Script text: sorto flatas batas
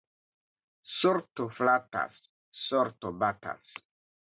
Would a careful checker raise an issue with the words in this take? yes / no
yes